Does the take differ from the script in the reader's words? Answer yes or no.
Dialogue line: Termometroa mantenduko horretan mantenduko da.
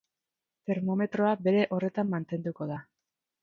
yes